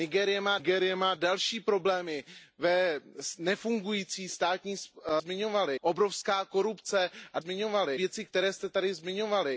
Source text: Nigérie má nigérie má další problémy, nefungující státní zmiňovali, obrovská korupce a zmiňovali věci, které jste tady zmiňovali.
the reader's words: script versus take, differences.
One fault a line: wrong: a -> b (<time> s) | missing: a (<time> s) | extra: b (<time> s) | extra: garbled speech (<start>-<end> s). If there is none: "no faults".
no faults